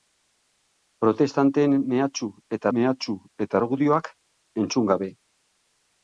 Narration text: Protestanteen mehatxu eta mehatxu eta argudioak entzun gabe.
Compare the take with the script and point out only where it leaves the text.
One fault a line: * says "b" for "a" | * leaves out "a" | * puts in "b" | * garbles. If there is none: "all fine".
all fine